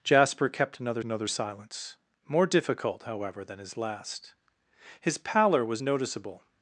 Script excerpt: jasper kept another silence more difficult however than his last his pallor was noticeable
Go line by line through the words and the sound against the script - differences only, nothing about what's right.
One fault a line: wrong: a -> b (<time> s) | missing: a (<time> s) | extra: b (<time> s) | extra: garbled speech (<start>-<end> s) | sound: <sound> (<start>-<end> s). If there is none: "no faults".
extra: another (1.0 s)